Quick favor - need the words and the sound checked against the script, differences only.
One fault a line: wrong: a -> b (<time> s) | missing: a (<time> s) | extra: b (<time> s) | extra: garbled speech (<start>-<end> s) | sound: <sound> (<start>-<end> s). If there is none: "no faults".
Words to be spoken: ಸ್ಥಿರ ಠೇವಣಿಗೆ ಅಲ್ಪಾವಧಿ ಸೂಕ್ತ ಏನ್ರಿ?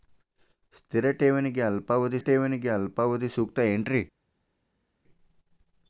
extra: ಠೇವಣಿಗೆ ಅಲ್ಪಾವಧಿ (2.2 s)